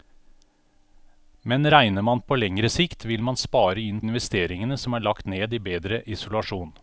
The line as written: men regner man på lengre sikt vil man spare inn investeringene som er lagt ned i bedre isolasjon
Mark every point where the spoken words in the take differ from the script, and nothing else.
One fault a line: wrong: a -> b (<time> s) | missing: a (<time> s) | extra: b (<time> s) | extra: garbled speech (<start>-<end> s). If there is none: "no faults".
no faults